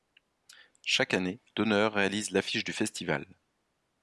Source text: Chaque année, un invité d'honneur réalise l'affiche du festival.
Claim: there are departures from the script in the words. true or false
true